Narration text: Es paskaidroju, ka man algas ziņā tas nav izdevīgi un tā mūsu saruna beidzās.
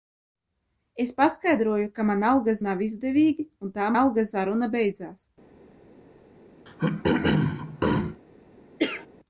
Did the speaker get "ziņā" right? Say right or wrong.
wrong